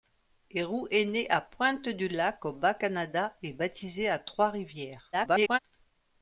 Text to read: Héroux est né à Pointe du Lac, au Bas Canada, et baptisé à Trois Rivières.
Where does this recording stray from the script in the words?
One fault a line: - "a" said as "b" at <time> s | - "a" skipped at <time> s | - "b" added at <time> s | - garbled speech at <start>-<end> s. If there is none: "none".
- garbled speech at 5.1-5.6 s